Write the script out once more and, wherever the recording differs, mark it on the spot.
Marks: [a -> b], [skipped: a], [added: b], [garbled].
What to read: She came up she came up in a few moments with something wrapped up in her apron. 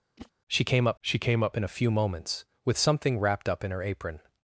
She came up she came up in a few moments with something wrapped up in her apron.